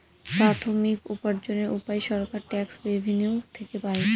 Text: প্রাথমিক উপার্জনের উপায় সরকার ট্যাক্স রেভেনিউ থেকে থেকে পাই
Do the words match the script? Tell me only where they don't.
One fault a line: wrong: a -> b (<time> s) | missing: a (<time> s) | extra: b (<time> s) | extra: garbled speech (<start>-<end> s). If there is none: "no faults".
missing: থেকে (3.8 s)